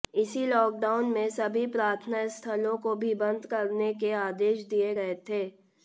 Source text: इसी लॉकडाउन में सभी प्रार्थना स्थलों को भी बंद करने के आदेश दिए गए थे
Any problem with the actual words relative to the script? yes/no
no